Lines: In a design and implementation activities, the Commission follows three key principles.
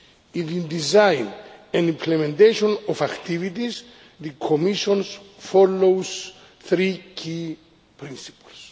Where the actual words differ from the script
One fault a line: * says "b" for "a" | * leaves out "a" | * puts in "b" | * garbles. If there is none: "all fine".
* says "the" for "a"
* puts in "of"